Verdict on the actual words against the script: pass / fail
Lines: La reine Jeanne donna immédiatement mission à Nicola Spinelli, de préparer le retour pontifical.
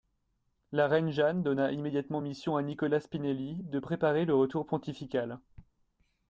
pass